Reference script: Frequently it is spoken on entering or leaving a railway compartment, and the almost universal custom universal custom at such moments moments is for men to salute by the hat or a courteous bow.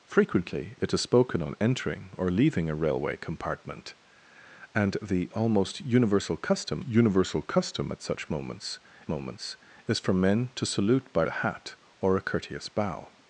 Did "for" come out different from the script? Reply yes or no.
no